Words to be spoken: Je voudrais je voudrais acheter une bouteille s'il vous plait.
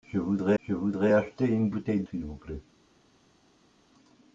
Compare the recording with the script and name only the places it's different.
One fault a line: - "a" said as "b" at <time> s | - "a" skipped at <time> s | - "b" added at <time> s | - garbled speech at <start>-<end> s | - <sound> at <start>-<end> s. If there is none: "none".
none